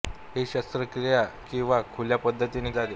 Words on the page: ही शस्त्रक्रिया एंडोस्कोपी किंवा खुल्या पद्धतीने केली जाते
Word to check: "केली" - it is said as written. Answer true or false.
false